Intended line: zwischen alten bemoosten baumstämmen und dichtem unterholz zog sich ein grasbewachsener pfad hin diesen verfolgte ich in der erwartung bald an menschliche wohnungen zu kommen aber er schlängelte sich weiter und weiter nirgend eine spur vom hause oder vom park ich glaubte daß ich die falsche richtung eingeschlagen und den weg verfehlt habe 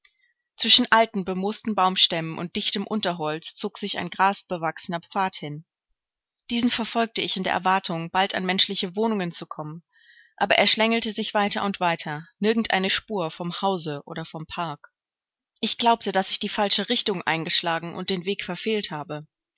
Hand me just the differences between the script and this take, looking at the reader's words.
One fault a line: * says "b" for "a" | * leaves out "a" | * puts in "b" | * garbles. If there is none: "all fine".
all fine